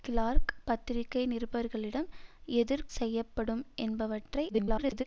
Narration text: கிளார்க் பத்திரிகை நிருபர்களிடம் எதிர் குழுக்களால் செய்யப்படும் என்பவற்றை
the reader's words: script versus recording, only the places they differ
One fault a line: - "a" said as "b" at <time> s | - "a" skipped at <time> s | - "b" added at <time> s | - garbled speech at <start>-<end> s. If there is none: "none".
- "குழுக்களால்" skipped at 2.9 s
- garbled speech at 4.5-5.0 s